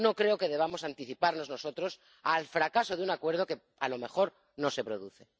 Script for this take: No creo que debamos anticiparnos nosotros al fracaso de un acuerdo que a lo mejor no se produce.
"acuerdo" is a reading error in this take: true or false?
false